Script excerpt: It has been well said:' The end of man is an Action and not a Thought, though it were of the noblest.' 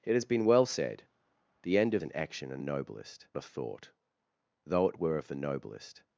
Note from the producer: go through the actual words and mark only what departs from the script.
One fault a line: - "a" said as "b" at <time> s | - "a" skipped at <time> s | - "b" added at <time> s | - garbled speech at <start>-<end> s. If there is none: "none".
- "man is" skipped at 2.0 s
- "not" said as "noblest" at 2.6 s